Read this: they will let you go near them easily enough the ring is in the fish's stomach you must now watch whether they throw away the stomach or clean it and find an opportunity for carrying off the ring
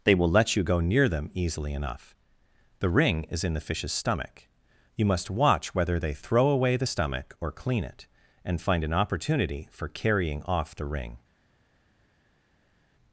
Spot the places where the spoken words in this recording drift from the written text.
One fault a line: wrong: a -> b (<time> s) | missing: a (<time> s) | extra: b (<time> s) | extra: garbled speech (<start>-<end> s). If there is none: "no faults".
missing: now (5.3 s)